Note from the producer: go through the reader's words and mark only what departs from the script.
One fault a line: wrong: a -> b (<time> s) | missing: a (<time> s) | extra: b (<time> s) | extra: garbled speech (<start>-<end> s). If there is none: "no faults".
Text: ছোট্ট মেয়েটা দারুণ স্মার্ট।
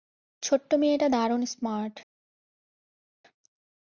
no faults